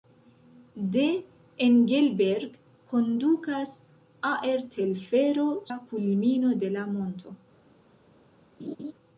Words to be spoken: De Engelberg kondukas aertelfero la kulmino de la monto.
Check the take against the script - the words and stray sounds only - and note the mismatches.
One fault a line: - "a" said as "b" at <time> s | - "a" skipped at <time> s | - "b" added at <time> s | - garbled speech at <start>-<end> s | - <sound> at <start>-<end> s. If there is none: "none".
- laugh at 8.6-8.9 s